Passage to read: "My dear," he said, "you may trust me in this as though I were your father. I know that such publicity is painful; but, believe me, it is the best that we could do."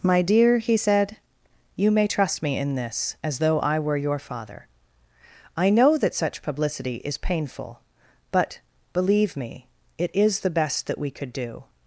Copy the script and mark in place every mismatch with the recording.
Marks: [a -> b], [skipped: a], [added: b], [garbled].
"My dear," he said, "you may trust me in this as though I were your father. I know that such publicity is painful; but, believe me, it is the best that we could do."